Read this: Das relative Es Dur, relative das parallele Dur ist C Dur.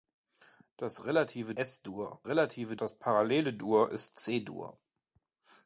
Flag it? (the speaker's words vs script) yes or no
no